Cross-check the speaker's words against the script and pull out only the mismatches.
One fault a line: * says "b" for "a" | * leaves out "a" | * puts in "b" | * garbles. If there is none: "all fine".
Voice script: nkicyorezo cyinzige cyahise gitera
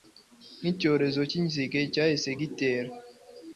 all fine